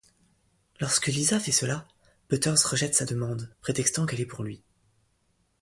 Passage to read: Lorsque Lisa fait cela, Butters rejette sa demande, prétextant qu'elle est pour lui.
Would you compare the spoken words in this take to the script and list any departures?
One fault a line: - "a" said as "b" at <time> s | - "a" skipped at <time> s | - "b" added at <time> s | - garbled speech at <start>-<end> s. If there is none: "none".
none